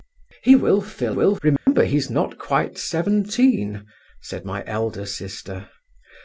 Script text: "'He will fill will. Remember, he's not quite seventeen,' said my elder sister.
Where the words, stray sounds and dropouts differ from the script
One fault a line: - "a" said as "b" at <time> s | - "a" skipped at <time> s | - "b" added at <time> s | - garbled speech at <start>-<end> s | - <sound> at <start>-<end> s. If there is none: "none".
- dropout at 1.6-1.7 s